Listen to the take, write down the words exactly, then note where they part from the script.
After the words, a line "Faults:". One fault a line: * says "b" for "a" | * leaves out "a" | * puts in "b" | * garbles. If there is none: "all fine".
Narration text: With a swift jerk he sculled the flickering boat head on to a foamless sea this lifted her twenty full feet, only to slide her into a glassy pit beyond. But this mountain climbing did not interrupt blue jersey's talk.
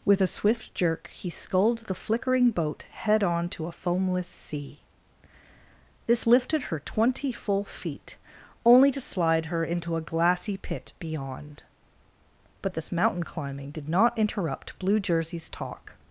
With a swift jerk he sculled the flickering boat head on to a foamless sea this lifted her twenty full feet, only to slide her into a glassy pit beyond. But this mountain climbing did not interrupt blue jersey's talk.
Faults:
all fine